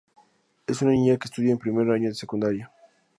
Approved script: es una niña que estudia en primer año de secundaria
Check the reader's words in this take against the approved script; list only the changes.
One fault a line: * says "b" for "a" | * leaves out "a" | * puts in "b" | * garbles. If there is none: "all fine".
all fine